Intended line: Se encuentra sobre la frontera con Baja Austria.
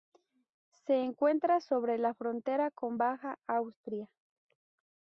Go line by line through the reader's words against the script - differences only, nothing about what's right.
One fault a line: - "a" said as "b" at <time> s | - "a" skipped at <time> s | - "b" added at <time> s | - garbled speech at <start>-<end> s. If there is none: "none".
none